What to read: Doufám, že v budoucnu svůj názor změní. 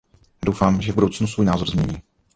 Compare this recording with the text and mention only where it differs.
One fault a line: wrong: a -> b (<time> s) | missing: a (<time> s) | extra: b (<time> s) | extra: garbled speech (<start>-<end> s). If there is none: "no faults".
no faults